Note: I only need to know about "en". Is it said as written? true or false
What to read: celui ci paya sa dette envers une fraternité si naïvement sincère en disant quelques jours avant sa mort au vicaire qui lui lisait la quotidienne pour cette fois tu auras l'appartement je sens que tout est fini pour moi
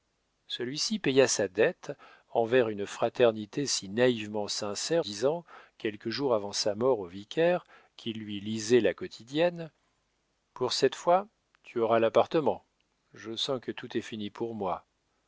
false